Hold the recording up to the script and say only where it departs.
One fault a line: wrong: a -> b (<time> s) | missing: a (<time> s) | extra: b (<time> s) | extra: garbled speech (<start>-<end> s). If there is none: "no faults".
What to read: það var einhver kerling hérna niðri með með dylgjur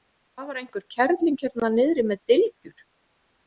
missing: með (2.2 s)